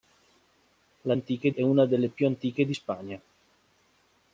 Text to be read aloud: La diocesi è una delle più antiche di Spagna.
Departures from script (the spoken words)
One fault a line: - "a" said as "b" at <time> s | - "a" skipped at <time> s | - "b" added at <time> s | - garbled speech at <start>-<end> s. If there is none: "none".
- "diocesi" said as "antiche" at 1.1 s